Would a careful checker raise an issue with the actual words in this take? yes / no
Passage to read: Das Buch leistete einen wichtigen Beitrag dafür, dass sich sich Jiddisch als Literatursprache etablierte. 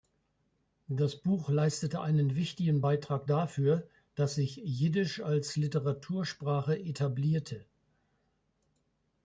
yes